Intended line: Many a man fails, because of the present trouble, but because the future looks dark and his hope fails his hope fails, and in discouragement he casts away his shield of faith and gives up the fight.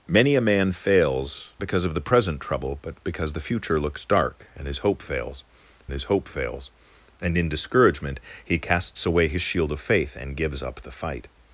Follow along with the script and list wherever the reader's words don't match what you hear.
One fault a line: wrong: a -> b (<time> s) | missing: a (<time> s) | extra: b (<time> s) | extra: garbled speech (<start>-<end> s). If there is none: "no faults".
no faults